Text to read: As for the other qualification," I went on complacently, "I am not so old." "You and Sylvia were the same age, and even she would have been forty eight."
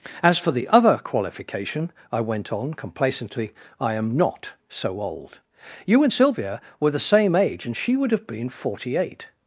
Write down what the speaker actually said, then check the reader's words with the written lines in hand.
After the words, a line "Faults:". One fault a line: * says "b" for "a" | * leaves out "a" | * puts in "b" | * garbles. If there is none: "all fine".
As for the other qualification," I went on complacently, "I am not so old." "You and Sylvia were the same age, and she would have been forty eight."
Faults:
* leaves out "even"